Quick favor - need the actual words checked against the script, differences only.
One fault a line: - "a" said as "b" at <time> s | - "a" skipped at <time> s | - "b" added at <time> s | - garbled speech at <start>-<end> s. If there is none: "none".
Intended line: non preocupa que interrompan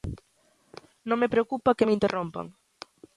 - "me" added at 1.2 s
- "me" added at 1.8 s